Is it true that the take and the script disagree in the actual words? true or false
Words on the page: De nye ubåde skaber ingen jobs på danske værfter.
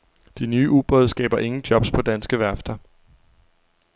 false